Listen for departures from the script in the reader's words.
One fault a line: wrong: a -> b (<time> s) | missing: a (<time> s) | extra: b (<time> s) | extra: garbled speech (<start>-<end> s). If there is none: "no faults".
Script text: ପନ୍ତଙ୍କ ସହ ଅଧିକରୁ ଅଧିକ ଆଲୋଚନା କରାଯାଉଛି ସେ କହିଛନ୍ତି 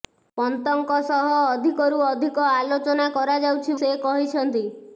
no faults